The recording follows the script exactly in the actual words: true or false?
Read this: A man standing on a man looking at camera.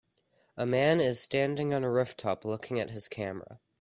false